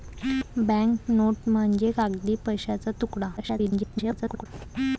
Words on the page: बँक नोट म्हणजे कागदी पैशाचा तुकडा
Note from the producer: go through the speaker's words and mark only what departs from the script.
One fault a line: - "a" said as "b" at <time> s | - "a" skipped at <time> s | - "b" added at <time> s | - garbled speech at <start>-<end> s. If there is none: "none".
- garbled speech at 3.4-4.5 s